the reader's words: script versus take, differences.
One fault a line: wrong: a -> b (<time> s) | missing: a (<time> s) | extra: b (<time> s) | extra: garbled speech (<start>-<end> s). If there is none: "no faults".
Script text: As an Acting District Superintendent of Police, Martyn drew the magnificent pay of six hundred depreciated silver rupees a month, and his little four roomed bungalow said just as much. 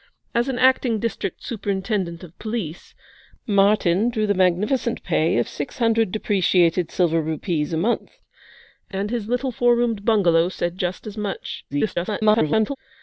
extra: garbled speech (11.7-12.8 s)